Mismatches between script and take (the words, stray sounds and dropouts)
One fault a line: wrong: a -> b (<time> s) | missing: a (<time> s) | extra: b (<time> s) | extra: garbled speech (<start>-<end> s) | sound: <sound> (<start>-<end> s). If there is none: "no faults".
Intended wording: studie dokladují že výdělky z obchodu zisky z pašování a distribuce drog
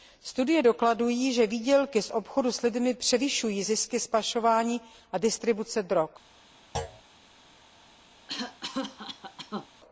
extra: s lidmi převyšují (2.5 s)
sound: thud (6.7-7.0 s)
sound: cough (8.3-9.7 s)